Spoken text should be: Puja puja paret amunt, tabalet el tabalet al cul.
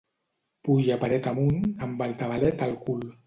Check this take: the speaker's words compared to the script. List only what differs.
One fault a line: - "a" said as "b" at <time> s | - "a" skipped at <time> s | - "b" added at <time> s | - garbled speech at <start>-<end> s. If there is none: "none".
- "puja" skipped at 1.0 s
- "tabalet" said as "amb" at 1.9 s